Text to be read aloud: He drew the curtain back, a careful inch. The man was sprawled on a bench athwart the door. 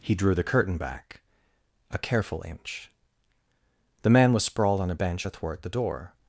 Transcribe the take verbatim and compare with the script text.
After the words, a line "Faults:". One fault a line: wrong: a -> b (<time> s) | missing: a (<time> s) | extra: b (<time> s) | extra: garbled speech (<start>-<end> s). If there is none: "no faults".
He drew the curtain back, a careful inch. The man was sprawled on a bench athwart the door.
Faults:
no faults